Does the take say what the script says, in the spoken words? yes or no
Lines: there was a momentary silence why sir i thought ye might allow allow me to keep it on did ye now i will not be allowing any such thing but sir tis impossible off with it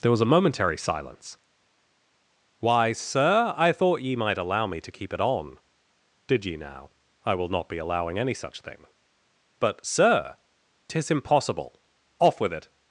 no